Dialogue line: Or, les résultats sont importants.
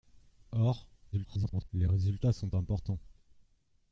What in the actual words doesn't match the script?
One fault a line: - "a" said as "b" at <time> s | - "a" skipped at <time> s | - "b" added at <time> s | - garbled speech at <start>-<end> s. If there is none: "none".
- garbled speech at 1.1-1.7 s